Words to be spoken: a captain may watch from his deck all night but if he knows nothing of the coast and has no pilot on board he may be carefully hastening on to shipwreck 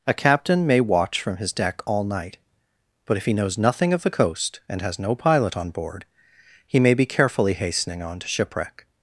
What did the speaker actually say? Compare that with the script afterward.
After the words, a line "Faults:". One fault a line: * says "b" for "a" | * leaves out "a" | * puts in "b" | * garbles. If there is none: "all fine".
a captain may watch from his deck all night but if he knows nothing of the coast and has no pilot on board he may be carefully hastening on to shipwreck
Faults:
all fine